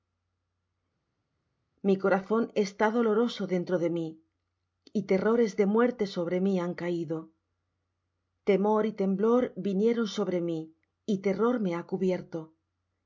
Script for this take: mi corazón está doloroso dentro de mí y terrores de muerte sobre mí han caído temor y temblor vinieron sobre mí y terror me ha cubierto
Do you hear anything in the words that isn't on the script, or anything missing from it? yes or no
no